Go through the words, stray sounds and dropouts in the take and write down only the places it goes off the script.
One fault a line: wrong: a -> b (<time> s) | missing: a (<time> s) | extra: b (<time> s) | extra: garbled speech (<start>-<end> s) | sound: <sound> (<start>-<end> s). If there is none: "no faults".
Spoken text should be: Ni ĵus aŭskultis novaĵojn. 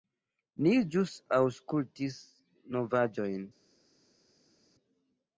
no faults